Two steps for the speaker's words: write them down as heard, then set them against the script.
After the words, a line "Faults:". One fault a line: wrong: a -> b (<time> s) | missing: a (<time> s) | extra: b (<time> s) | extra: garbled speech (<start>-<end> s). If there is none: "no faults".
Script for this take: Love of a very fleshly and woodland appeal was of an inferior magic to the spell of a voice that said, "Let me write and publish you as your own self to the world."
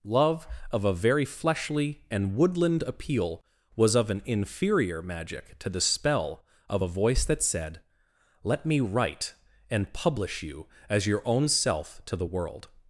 Love of a very fleshly and woodland appeal was of an inferior magic to the spell of a voice that said, "Let me write and publish you as your own self to the world."
Faults:
no faults